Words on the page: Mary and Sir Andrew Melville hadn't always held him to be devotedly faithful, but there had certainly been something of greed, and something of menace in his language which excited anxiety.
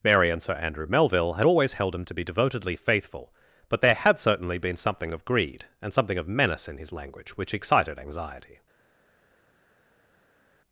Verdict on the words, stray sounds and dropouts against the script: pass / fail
fail